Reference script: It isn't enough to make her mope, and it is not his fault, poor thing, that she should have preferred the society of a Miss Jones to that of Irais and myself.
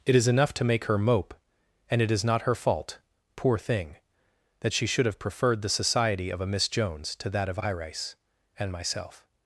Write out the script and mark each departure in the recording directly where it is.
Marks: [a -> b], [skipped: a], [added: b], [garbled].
It [isn't -> is] enough to make her mope, and it is not [his -> her] fault, poor thing, that she should have preferred the society of a Miss Jones to that of Irais and myself.